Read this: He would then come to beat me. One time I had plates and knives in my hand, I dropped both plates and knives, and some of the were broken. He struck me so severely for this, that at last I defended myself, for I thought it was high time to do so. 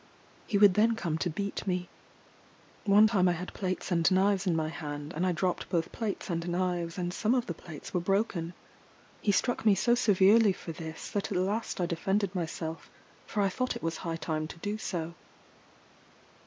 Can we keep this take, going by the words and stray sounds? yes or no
no